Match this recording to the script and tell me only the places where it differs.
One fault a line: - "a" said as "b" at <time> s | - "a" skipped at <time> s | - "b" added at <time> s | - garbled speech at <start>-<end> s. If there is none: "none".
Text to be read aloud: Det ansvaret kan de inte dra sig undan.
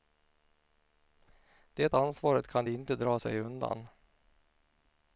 none